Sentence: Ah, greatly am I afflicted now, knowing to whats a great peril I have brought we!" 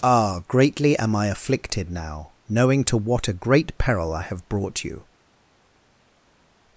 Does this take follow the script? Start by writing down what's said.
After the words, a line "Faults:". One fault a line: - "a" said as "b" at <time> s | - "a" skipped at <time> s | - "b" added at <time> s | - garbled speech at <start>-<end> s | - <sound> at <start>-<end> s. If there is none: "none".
Ah, greatly am I afflicted now, knowing to what a great peril I have brought you!"
Faults:
- "whats" said as "what" at 3.0 s
- "we" said as "you" at 4.8 s